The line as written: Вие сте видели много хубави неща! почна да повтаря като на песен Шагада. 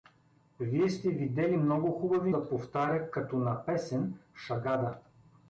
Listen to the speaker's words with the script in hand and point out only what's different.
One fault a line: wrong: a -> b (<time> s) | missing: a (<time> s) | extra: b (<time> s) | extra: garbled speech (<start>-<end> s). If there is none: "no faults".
missing: неща почна (2.3 s)